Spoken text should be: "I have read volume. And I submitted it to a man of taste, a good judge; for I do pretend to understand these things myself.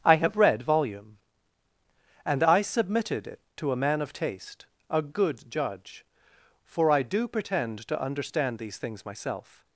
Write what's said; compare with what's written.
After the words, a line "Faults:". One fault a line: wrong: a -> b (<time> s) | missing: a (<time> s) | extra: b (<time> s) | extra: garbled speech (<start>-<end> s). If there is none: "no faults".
"I have read volume. And I submitted it to a man of taste, a good judge; for I do pretend to understand these things myself.
Faults:
no faults